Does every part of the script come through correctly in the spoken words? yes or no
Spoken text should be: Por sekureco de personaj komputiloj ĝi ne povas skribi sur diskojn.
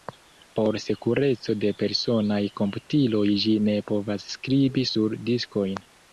yes